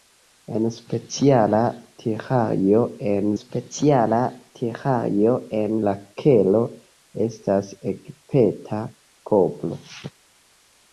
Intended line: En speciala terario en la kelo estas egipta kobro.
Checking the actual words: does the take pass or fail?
fail